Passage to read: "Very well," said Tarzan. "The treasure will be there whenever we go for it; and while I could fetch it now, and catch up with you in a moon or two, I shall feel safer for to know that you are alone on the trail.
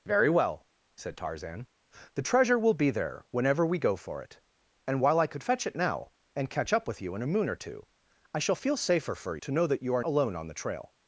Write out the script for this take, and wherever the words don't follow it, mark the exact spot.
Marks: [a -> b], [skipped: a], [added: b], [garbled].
"Very well," said Tarzan. "The treasure will be there whenever we go for it; and while I could fetch it now, and catch up with you in a moon or two, I shall feel safer for to know that you are alone on the trail.